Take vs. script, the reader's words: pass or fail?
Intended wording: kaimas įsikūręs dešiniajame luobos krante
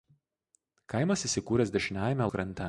fail